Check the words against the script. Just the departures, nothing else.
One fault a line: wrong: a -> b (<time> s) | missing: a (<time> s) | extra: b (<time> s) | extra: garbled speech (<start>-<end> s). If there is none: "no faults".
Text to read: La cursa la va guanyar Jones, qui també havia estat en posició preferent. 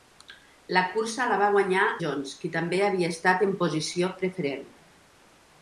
no faults